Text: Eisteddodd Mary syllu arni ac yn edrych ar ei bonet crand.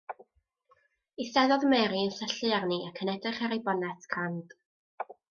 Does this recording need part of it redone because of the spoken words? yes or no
yes